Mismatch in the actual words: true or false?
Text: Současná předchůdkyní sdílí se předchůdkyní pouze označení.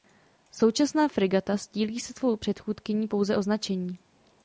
true